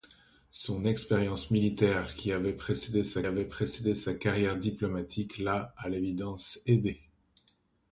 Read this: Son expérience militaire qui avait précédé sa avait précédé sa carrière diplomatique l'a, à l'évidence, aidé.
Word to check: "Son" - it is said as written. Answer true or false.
true